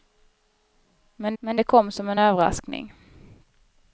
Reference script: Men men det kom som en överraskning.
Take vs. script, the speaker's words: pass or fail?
pass